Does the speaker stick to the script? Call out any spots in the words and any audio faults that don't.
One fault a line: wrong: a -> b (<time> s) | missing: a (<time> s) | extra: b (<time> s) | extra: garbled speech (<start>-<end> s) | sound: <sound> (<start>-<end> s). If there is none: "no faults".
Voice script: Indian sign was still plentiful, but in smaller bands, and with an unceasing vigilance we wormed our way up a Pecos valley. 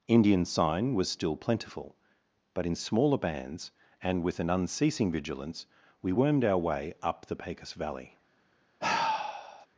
wrong: a -> the (7.3 s)
sound: sigh (8.8-9.7 s)